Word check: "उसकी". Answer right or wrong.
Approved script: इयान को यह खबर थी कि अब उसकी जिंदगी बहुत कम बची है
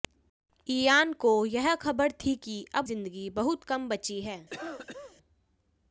wrong